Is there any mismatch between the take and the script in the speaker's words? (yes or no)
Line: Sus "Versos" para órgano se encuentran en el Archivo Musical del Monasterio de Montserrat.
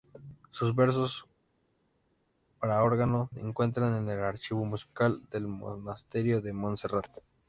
yes